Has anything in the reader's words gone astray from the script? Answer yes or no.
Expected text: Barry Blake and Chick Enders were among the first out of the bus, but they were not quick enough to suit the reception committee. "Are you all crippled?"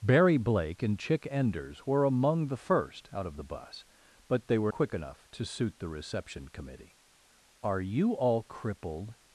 yes